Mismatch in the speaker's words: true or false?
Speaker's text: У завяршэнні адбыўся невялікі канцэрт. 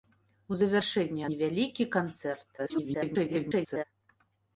true